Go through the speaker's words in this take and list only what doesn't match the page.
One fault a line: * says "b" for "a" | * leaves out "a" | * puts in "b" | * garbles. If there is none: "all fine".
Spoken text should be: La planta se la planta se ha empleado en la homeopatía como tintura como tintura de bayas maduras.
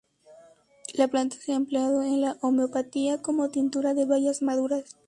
* leaves out "la planta se"
* leaves out "como tintura"